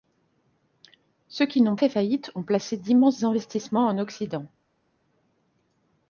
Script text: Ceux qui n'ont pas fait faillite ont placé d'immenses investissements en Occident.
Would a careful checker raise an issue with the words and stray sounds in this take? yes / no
yes